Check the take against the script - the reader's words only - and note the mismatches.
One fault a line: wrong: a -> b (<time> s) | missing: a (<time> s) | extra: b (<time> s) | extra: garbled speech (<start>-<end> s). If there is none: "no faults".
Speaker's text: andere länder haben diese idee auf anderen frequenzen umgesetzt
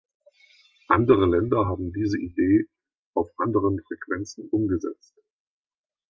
no faults